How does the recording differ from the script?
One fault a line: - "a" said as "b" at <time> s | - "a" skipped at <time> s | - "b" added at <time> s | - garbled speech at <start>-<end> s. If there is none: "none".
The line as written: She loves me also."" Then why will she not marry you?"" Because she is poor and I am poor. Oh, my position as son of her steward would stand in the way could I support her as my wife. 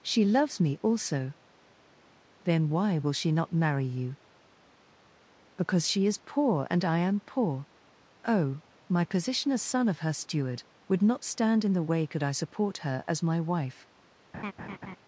- "not" added at 11.0 s